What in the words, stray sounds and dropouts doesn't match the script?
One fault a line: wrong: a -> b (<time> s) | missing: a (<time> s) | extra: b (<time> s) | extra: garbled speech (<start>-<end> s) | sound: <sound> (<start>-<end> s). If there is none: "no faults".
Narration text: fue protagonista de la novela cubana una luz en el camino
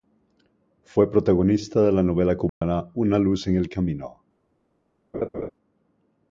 sound: dropout (2.5-2.6 s)
sound: laugh (5.1-5.5 s)